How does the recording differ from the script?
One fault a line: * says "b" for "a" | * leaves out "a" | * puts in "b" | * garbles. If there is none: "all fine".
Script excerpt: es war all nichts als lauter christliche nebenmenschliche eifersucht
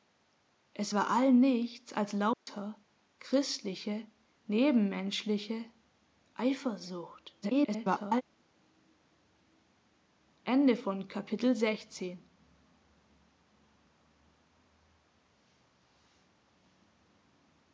* garbles